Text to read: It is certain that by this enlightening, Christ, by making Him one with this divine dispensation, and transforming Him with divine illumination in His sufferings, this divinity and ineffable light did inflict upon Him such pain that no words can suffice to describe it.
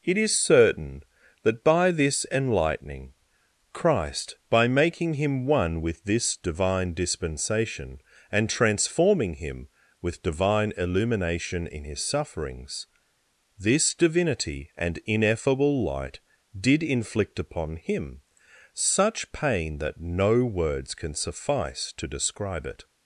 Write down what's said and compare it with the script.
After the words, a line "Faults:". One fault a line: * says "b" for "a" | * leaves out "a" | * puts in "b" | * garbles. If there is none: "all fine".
It is certain that by this enlightening, Christ, by making Him one with this divine dispensation, and transforming Him with divine illumination in His sufferings, this divinity and ineffable light did inflict upon Him such pain that no words can suffice to describe it.
Faults:
all fine